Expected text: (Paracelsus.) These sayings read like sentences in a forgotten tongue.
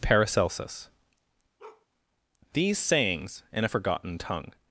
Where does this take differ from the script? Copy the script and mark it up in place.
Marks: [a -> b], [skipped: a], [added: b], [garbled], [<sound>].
(Paracelsus.) [bark] These sayings [skipped: read like sentences] in a forgotten tongue.